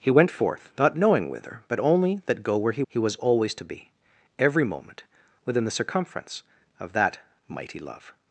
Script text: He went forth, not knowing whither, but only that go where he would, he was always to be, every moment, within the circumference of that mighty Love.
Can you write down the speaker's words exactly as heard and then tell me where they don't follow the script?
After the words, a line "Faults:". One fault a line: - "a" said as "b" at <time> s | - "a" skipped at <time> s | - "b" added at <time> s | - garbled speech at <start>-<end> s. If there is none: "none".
He went forth, not knowing whither, but only that go where he he was always to be, every moment, within the circumference of that mighty Love.
Faults:
- "would" skipped at 2.8 s